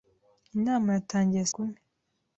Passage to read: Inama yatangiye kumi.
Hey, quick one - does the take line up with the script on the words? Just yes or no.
yes